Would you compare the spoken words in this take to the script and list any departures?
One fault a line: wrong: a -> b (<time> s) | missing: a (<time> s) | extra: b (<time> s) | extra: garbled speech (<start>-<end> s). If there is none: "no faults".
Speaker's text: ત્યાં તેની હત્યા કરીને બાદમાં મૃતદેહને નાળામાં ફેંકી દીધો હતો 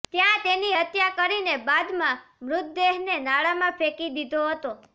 no faults